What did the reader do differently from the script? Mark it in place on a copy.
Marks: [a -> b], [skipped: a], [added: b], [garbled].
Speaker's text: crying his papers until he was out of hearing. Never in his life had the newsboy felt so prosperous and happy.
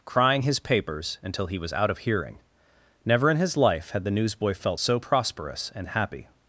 crying his papers until he was out of hearing. Never in his life had the newsboy felt so prosperous and happy.